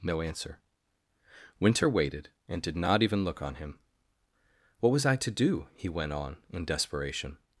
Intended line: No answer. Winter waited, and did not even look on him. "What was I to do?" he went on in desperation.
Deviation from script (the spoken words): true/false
false